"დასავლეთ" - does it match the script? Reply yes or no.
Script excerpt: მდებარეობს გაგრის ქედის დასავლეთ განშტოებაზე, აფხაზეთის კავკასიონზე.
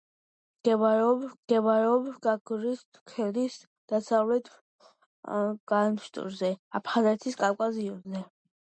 yes